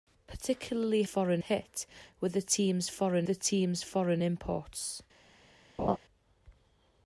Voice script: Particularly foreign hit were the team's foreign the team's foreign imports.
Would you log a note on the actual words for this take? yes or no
no